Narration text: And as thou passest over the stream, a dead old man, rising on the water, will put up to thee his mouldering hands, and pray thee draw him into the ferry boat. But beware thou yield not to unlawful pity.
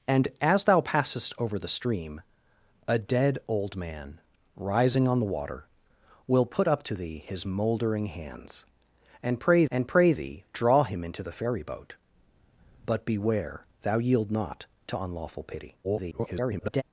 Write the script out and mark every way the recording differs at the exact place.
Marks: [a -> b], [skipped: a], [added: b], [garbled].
And as thou passest over the stream, a dead old man, rising on the water, will put up to thee his mouldering hands, and pray [added: and pray] thee draw him into the ferry boat. But beware thou yield not to unlawful pity. [garbled]